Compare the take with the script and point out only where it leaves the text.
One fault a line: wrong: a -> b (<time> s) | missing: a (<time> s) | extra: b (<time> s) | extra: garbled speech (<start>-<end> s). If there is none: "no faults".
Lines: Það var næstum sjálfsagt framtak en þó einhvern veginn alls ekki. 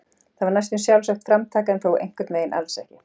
no faults